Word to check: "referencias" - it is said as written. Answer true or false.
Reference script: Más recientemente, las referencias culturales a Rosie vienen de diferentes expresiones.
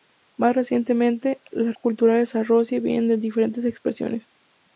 false